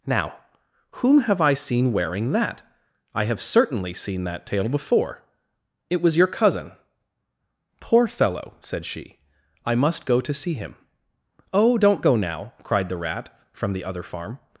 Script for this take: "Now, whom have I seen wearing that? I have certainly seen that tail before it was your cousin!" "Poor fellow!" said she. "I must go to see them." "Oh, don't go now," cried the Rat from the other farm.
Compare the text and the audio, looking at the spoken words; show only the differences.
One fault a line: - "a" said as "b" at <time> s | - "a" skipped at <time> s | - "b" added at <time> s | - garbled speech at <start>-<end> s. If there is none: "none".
- "them" said as "him" at 10.5 s